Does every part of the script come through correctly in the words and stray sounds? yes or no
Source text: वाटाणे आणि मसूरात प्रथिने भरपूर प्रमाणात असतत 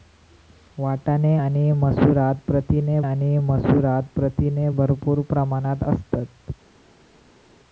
no